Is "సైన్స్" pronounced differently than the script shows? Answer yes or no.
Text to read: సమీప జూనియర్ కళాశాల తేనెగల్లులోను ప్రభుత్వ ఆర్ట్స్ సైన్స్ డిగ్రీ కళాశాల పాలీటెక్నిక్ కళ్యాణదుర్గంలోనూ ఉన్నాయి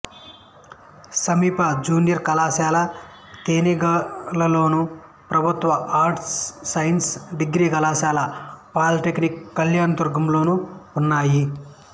no